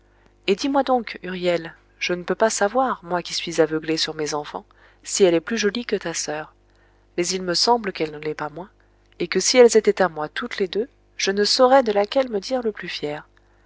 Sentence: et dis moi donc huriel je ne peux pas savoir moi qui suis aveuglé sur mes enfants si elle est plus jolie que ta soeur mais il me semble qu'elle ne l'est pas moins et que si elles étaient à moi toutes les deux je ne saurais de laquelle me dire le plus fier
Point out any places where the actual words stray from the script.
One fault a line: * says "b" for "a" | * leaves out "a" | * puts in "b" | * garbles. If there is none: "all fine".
all fine